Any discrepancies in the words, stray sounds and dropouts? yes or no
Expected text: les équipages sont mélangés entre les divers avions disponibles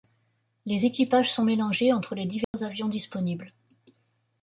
yes